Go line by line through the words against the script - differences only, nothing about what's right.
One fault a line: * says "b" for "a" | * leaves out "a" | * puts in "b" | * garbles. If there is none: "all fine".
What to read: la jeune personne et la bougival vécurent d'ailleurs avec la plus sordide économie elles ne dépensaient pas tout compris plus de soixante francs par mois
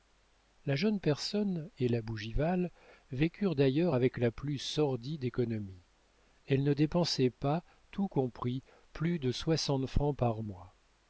all fine